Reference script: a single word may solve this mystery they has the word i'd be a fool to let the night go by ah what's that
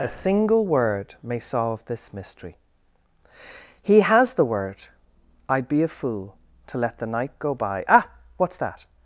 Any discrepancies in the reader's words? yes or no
yes